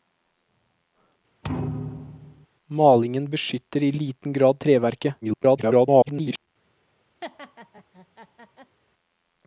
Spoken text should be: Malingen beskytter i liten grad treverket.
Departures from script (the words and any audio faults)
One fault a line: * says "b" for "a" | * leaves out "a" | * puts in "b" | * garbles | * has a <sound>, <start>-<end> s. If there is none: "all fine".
* has a thud, 1.4-2.5 s
* garbles
* has a laugh, 7.2-8.8 s